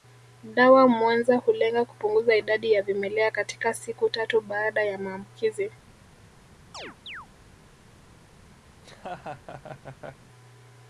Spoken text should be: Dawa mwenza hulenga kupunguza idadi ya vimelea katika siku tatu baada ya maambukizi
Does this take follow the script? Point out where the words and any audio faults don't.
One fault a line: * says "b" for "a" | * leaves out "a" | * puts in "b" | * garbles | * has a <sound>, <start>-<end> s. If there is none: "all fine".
* has a chirp, 6.7-7.3 s
* has a laugh, 8.7-10.3 s